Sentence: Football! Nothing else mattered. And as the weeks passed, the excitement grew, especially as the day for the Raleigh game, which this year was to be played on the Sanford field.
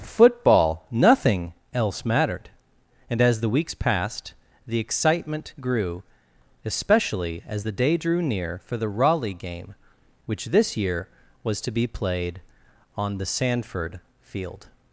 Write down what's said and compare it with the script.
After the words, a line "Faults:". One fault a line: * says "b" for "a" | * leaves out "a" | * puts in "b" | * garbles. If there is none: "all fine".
Football! Nothing else mattered. And as the weeks passed, the excitement grew, especially as the day drew near for the Raleigh game, which this year was to be played on the Sanford field.
Faults:
* puts in "drew near"